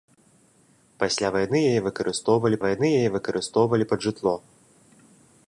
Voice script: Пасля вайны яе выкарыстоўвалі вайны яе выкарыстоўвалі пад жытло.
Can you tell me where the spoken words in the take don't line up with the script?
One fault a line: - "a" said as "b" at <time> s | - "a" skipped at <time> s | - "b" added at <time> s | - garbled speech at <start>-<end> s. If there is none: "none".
none